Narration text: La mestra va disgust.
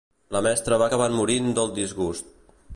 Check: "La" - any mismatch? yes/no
no